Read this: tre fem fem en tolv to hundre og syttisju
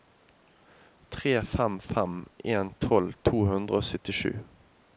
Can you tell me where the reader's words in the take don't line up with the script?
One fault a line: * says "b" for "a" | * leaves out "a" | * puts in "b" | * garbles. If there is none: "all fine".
all fine